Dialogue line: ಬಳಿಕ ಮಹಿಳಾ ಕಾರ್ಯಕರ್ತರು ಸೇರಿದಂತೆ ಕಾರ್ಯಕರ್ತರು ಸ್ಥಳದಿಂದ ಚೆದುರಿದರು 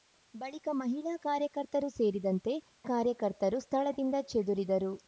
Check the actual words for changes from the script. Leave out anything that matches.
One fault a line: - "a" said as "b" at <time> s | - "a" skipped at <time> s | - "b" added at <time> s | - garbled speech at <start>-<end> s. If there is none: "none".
none